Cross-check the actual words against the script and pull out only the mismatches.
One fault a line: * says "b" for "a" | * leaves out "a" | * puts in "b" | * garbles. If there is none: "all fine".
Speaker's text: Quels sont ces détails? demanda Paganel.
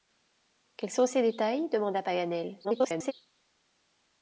* garbles